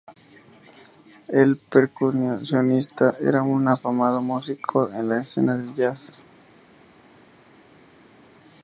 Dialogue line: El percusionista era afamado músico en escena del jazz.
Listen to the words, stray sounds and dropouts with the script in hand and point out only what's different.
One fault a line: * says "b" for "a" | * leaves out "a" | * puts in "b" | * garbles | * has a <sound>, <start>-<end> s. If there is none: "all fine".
* puts in "un"
* puts in "la"